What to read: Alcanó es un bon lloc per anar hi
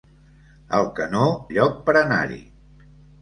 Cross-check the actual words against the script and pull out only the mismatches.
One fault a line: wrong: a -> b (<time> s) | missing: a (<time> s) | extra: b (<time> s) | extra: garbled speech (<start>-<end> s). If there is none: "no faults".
missing: es un bon (1.3 s)